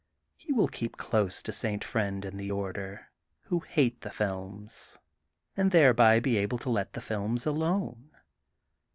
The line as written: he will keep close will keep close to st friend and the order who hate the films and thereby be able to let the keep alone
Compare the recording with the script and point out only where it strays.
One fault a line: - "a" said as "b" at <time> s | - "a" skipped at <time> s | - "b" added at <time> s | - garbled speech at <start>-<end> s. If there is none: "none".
- "will keep close" skipped at 1.4 s
- "keep" said as "films" at 7.0 s